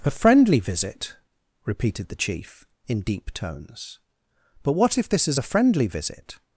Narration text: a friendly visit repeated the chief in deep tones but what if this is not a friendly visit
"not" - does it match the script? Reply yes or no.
no